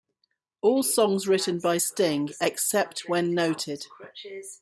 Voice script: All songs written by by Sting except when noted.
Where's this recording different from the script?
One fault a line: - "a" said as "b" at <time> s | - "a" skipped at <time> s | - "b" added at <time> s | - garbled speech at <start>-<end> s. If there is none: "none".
- "by" skipped at 1.8 s